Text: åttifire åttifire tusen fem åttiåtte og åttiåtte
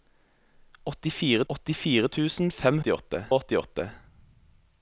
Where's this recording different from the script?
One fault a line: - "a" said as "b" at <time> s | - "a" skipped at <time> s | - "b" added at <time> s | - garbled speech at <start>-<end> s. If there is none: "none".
none